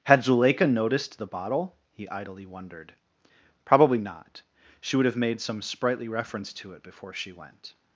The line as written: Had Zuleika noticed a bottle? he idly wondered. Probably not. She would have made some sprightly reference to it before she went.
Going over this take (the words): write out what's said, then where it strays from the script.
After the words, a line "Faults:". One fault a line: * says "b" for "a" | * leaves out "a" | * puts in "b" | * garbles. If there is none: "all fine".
Had Zuleika noticed the bottle? he idly wondered. Probably not. She would have made some sprightly reference to it before she went.
Faults:
* says "the" for "a"